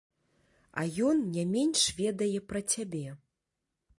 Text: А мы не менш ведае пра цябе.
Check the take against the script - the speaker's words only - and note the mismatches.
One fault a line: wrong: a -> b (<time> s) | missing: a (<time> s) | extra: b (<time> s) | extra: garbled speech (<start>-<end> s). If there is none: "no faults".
wrong: мы -> ён (1.1 s)